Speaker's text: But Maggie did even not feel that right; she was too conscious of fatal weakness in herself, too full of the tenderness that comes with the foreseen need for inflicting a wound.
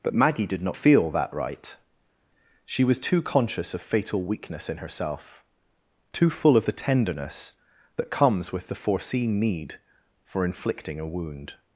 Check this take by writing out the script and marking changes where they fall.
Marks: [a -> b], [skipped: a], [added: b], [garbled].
But Maggie did [skipped: even] not feel that right; she was too conscious of fatal weakness in herself, too full of the tenderness that comes with the foreseen need for inflicting a wound.